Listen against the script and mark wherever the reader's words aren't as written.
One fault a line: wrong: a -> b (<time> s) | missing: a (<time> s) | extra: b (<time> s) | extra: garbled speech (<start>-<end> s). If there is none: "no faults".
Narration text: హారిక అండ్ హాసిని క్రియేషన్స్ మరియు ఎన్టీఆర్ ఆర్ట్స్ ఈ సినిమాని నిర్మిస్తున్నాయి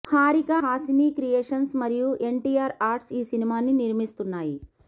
missing: అండ్ (0.5 s)